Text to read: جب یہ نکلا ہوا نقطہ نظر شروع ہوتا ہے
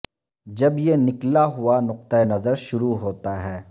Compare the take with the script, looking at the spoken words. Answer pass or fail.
pass